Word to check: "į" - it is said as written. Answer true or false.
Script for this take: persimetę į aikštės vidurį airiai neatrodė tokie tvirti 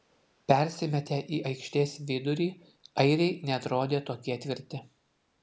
true